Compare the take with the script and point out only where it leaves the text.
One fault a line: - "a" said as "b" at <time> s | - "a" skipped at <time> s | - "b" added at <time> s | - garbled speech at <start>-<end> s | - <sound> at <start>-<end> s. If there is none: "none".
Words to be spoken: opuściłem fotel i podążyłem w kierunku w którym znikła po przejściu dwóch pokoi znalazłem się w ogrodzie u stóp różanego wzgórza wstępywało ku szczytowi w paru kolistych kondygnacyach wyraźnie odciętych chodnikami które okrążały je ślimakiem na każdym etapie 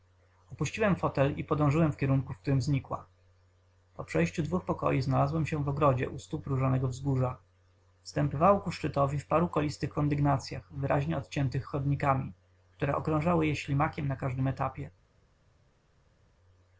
none